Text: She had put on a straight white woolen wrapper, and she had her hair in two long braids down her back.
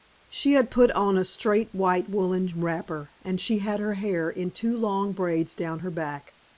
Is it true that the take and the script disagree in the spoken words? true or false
false